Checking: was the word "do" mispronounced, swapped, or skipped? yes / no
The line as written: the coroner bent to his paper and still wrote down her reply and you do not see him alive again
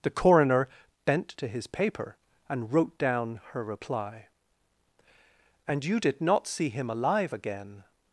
yes